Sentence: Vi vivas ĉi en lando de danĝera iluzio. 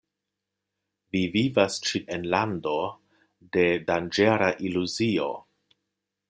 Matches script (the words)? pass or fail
pass